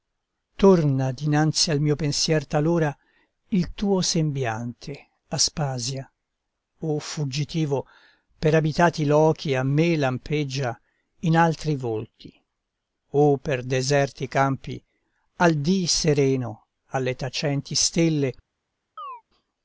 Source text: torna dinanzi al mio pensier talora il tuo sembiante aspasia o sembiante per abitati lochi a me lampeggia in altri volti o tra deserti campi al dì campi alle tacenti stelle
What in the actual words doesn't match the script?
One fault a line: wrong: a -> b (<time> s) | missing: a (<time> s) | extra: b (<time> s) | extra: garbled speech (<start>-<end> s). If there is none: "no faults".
wrong: sembiante -> fuggitivo (7.0 s)
wrong: tra -> per (13.4 s)
wrong: campi -> sereno (15.9 s)